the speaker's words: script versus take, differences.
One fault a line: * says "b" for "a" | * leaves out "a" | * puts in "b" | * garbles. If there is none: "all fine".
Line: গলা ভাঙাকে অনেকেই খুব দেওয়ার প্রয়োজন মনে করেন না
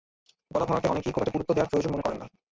* puts in "একটা গুরুত্ব"